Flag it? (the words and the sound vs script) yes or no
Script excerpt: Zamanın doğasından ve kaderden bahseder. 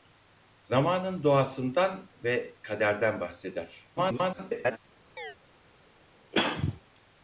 yes